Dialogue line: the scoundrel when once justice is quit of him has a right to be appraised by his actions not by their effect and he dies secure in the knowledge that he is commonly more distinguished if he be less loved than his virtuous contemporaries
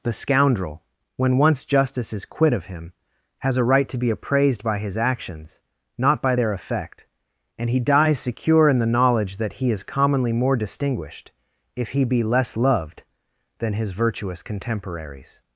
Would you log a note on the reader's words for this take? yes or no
no